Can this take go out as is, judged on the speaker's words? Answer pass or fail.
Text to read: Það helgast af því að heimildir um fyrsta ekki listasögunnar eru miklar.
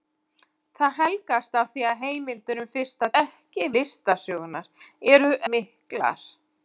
pass